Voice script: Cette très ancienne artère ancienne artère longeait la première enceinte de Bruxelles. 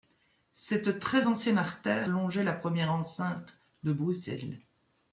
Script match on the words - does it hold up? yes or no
no